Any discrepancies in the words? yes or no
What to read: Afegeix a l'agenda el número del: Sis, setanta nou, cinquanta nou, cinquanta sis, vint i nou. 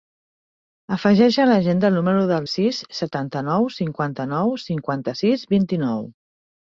no